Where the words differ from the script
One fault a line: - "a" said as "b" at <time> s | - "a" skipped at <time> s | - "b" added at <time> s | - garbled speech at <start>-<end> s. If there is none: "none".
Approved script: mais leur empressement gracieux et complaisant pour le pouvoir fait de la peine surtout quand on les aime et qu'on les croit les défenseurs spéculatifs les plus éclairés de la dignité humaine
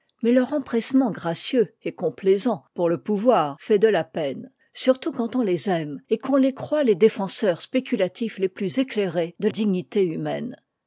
- "la" skipped at 9.5 s